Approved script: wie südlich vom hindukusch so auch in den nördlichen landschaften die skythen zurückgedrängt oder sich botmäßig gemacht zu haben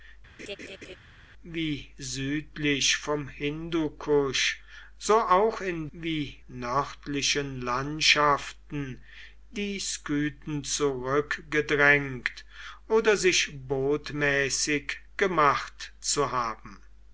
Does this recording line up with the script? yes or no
no